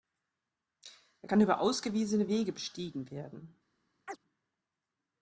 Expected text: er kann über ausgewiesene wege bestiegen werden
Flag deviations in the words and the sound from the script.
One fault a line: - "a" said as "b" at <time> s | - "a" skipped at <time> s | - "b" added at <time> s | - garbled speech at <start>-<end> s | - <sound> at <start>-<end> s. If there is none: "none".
- chirp at 4.1-4.2 s